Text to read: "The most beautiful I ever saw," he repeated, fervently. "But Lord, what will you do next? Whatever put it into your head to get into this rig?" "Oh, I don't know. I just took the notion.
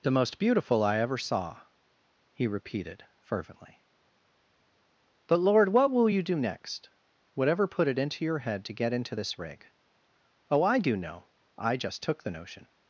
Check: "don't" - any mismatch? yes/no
yes